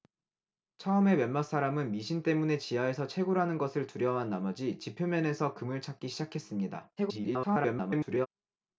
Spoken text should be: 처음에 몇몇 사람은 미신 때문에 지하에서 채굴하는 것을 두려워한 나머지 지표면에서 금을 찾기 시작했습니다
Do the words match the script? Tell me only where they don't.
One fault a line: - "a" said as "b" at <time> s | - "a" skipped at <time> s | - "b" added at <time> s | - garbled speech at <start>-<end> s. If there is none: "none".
- garbled speech at 7.0-8.3 s